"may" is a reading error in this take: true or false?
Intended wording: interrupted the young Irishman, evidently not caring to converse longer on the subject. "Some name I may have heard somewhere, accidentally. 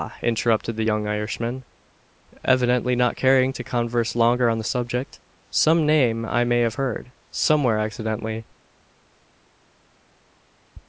false